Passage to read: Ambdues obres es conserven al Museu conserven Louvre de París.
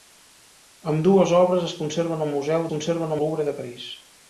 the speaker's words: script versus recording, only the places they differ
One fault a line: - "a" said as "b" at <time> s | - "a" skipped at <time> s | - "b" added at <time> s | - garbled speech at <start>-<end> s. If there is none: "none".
none